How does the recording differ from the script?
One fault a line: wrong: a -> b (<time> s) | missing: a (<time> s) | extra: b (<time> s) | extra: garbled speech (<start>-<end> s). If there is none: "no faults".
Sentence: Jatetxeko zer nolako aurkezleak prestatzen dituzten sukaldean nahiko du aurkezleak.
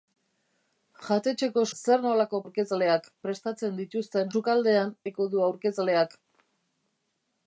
no faults